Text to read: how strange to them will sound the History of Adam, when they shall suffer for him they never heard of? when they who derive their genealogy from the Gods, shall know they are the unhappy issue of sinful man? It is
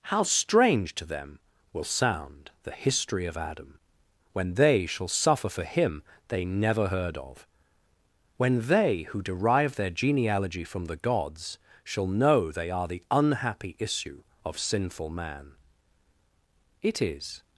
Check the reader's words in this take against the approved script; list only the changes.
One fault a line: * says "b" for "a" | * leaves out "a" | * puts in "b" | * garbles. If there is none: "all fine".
all fine